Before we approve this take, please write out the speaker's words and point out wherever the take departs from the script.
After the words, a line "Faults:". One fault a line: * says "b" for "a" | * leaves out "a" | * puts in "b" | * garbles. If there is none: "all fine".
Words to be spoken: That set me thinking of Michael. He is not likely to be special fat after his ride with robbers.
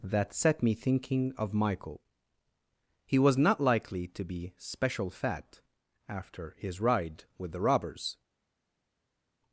That set me thinking of Michael. He was not likely to be special fat after his ride with the robbers.
Faults:
* says "was" for "is"
* puts in "the"